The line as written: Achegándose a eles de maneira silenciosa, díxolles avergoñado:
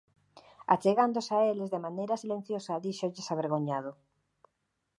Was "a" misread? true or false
false